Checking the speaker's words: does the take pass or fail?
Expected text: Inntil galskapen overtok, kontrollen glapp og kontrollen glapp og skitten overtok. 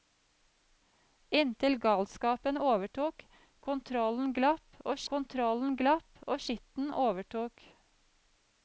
pass